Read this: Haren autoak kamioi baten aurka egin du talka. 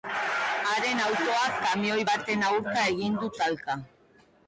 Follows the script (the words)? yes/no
yes